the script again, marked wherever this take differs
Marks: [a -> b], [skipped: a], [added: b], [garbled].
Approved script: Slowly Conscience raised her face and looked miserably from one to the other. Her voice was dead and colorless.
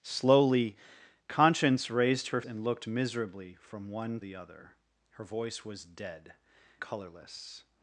Slowly Conscience raised her [skipped: face] and looked miserably from one [skipped: to] the other. Her voice was dead [skipped: and] colorless.